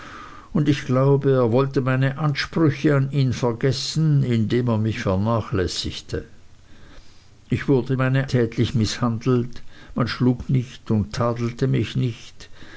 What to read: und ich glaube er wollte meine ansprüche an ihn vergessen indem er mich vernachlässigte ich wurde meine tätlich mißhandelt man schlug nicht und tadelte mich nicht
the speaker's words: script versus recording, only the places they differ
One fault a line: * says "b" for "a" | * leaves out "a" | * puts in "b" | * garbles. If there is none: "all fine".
all fine